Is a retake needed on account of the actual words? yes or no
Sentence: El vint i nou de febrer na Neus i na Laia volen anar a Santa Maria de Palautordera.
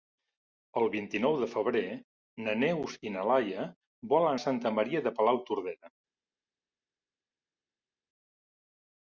yes